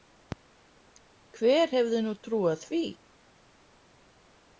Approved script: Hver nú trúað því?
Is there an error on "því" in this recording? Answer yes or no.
no